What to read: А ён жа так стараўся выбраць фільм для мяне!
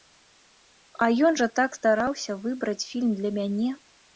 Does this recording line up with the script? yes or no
yes